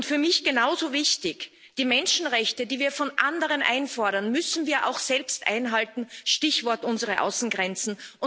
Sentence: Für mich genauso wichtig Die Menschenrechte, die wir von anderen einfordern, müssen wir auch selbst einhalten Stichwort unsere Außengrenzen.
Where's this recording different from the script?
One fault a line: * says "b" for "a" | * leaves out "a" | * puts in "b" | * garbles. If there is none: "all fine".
all fine